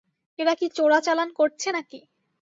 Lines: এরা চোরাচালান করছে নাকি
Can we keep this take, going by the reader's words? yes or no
no